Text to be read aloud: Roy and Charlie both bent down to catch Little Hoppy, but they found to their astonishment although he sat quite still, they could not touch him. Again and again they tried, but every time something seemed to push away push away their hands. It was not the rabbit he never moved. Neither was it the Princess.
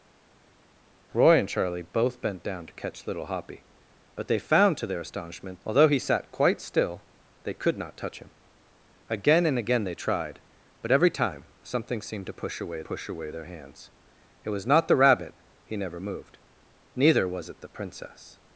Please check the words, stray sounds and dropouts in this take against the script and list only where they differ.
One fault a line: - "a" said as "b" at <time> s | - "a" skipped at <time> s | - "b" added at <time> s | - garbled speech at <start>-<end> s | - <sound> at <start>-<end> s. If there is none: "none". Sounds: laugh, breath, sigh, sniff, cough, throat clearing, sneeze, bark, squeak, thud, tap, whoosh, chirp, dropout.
none